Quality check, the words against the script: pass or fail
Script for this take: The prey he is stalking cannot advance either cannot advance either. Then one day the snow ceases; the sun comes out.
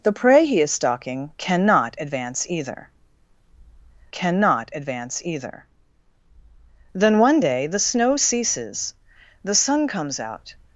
pass